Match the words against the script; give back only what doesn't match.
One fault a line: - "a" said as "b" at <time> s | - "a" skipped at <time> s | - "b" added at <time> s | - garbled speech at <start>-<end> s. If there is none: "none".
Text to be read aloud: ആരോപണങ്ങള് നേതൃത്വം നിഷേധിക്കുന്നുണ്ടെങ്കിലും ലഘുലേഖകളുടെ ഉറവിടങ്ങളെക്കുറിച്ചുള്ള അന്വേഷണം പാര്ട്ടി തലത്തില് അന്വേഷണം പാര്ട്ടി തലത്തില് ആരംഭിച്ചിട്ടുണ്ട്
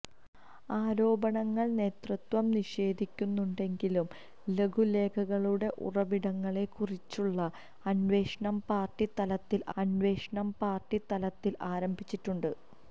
none